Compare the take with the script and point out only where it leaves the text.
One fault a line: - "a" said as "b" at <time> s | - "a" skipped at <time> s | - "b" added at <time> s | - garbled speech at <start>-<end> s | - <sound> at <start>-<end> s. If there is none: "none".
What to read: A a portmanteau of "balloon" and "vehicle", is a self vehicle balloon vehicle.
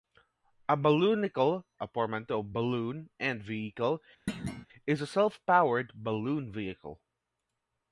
- "balloonicle" added at 0.8 s
- thud at 4.3-4.7 s
- "vehicle" said as "powered" at 5.5 s